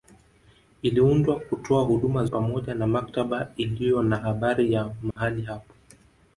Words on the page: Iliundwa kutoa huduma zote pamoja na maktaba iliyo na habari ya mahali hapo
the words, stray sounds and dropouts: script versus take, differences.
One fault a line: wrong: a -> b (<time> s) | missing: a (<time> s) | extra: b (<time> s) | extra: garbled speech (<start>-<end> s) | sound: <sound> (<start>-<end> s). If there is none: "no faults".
missing: zote (2.2 s)
sound: dropout (5.1-5.2 s)